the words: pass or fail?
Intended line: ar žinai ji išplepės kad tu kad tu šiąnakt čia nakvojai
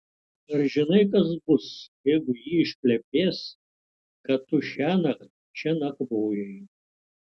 fail